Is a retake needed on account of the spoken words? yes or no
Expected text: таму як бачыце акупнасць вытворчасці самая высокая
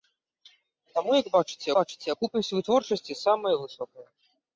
yes